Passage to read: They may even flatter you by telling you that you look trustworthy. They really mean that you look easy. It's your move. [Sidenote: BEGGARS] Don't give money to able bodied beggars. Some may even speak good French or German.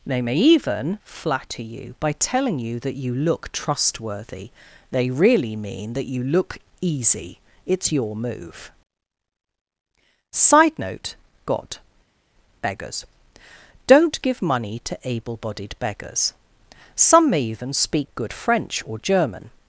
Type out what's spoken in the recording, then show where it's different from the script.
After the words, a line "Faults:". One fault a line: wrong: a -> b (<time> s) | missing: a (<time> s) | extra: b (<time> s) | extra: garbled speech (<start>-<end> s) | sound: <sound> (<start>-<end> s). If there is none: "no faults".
They may even flatter you by telling you that you look trustworthy. They really mean that you look easy. It's your move. [Side note god: BEGGARS] Don't give money to able bodied beggars. Some may even speak good French or German.
Faults:
wrong: Sidenote -> Side note god (10.3 s)